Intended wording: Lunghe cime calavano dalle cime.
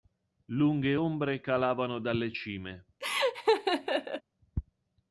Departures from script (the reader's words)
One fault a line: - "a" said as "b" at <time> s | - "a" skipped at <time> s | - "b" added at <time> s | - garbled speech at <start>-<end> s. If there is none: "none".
- "cime" said as "ombre" at 0.9 s